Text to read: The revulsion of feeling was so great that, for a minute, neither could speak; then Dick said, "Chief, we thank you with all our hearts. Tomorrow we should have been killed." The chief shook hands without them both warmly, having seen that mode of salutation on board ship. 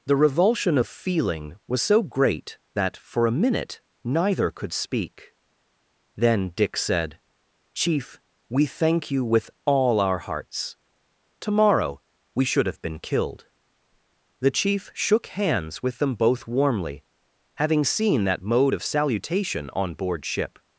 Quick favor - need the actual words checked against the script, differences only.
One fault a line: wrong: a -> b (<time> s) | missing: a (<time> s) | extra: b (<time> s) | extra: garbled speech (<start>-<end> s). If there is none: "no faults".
wrong: without -> with (15.8 s)